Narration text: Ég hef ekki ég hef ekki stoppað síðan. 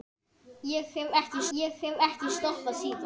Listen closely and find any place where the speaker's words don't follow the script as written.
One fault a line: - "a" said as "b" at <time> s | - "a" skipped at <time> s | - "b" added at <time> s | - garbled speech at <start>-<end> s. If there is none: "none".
none